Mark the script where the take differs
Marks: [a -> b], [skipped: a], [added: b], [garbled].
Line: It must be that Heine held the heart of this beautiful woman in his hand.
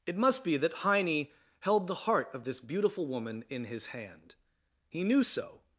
It must be that Heine held the heart of this beautiful woman in his hand. [added: He knew so]